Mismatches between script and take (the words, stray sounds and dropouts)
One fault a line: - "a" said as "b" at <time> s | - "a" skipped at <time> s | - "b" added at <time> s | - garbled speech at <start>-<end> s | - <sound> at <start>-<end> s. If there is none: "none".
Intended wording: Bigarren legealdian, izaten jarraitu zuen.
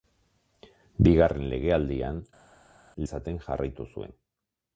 none